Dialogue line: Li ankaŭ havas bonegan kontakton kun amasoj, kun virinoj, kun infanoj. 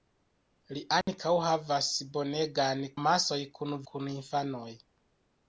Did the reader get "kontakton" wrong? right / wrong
wrong